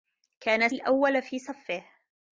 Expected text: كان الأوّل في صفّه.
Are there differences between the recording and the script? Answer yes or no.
no